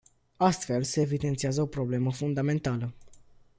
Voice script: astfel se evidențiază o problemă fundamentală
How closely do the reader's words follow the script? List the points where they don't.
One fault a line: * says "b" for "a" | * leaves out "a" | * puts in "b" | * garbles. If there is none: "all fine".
all fine